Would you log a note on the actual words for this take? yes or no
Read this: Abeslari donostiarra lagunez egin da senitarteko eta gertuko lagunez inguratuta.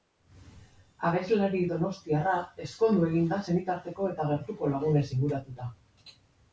yes